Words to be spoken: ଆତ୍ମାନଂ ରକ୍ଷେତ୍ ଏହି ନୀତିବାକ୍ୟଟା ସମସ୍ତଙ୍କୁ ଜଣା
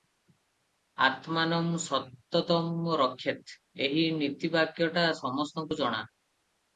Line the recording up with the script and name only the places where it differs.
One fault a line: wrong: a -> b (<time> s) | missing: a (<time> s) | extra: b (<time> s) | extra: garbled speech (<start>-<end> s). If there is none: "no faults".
extra: ସତତଂ (1.8 s)